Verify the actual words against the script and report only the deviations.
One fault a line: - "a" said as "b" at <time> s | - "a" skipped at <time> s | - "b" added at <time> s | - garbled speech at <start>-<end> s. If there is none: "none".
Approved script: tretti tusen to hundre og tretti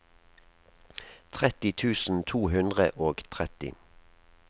none